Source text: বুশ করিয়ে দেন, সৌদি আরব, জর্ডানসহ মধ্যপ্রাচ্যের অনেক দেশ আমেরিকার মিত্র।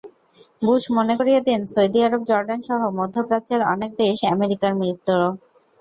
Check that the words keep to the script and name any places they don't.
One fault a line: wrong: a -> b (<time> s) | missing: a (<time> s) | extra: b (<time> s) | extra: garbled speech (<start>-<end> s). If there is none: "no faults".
extra: মনে (1.0 s)